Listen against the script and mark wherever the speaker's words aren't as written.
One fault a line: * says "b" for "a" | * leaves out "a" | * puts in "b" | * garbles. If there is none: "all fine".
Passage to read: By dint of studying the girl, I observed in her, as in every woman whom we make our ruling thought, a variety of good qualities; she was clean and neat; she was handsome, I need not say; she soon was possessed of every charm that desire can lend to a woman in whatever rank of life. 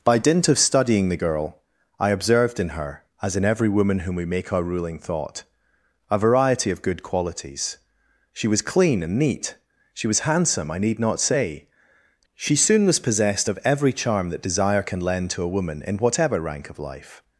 all fine